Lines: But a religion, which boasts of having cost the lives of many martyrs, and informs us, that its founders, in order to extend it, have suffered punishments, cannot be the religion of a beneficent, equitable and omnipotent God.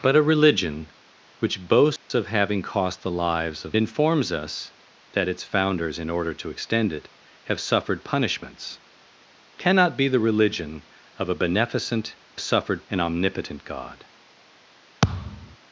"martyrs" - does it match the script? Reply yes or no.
no